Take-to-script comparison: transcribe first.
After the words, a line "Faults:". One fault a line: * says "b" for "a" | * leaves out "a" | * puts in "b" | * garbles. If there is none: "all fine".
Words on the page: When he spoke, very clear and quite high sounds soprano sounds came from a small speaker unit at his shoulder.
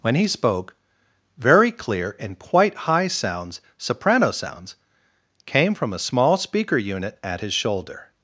When he spoke, very clear and quite high sounds soprano sounds came from a small speaker unit at his shoulder.
Faults:
all fine